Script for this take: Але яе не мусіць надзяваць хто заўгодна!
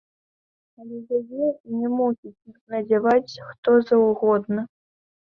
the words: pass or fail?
pass